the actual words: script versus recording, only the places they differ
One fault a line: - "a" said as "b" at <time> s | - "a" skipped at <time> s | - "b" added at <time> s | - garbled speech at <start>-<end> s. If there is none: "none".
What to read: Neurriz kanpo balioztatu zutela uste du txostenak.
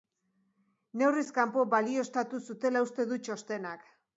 none